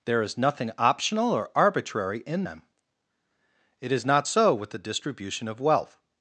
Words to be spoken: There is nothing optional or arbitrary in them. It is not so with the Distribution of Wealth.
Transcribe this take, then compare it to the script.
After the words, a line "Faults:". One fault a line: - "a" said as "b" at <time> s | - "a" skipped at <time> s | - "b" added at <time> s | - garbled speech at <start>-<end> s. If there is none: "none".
There is nothing optional or arbitrary in them. It is not so with the Distribution of Wealth.
Faults:
none